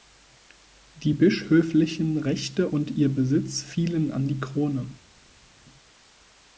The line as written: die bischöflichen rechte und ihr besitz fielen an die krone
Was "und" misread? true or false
false